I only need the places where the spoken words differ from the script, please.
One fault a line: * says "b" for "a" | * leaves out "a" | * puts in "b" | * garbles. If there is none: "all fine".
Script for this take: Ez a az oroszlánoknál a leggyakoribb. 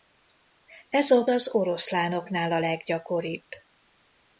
all fine